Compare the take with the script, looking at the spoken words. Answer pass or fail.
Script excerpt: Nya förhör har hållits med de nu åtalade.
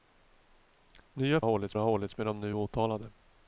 fail